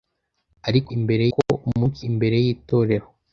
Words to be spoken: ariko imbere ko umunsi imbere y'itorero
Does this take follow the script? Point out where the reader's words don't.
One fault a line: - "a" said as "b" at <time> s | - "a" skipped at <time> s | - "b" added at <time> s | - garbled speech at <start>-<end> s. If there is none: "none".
none